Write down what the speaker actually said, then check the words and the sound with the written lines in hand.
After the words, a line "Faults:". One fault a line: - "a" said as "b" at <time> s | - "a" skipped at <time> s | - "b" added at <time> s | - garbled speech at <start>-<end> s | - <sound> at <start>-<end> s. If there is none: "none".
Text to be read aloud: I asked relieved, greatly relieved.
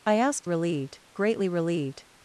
I asked relieved, greatly relieved.
Faults:
none